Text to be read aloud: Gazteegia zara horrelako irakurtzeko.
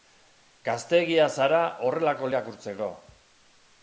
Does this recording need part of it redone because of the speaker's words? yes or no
no